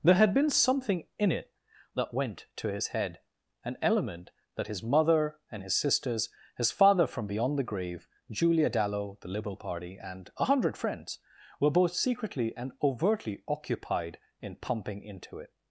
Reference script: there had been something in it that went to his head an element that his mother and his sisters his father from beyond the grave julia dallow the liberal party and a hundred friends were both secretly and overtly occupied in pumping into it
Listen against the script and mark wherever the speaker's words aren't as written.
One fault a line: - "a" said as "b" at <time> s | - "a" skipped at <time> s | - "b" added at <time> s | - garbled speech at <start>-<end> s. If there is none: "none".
none